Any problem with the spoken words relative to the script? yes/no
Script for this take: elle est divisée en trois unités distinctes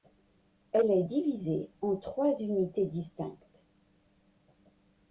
no